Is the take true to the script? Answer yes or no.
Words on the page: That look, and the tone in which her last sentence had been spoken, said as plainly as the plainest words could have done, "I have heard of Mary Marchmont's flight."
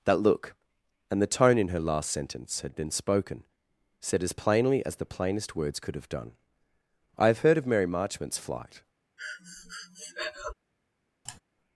no